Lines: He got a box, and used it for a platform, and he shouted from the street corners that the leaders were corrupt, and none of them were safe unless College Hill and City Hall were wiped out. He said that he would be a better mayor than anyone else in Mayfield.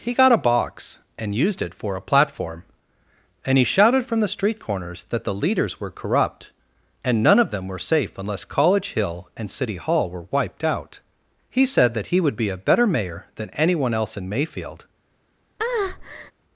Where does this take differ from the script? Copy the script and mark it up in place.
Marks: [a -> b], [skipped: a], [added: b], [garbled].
He got a box, and used it for a platform, and he shouted from the street corners that the leaders were corrupt, and none of them were safe unless College Hill and City Hall were wiped out. He said that he would be a better mayor than anyone else in Mayfield.